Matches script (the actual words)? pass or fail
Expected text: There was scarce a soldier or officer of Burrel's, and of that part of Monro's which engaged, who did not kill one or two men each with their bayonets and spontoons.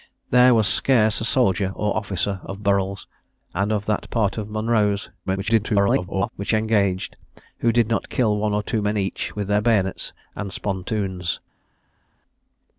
fail